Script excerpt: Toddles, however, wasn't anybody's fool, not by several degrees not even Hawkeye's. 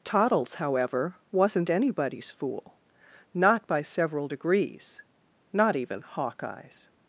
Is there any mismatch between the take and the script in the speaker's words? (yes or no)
no